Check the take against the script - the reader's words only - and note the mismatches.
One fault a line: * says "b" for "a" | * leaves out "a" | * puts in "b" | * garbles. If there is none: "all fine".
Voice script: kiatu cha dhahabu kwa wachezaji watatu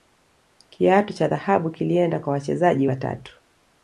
* puts in "kilienda"